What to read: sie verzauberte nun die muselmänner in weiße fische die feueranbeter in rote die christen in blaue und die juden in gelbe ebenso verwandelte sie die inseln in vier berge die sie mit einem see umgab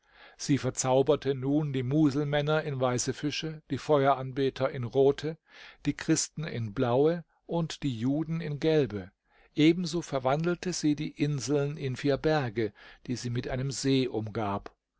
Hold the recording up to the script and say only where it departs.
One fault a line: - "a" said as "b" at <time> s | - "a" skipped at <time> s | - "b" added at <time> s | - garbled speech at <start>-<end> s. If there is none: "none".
none